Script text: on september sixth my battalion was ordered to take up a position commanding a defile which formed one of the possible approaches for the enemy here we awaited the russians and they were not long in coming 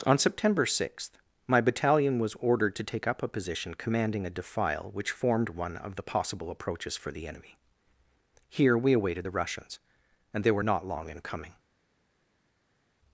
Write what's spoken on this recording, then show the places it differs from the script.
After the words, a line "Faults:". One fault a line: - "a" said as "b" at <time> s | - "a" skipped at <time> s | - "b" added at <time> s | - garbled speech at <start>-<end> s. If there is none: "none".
on september sixth my battalion was ordered to take up a position commanding a defile which formed one of the possible approaches for the enemy here we awaited the russians and they were not long in coming
Faults:
none